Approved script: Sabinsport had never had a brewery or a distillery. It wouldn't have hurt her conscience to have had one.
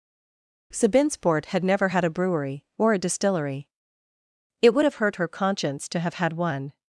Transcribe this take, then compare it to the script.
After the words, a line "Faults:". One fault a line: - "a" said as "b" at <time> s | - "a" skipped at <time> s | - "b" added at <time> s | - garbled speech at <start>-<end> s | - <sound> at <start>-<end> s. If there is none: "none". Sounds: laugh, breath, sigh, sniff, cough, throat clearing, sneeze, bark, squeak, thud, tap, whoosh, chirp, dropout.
Sabinsport had never had a brewery or a distillery. It would have hurt her conscience to have had one.
Faults:
- "wouldn't" said as "would" at 4.7 s